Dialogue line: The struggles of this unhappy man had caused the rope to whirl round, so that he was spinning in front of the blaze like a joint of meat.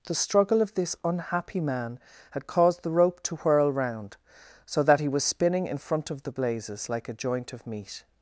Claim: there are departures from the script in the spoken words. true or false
true